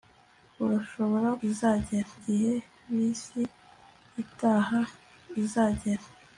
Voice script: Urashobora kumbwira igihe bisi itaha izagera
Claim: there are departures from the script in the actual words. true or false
true